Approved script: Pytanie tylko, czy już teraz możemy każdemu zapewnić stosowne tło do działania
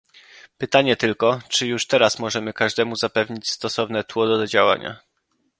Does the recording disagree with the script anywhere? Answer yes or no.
no